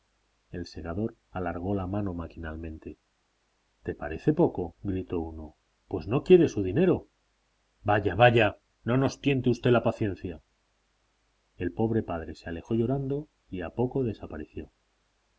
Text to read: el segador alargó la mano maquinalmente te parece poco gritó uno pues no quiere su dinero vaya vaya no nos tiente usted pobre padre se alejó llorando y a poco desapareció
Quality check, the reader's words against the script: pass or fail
fail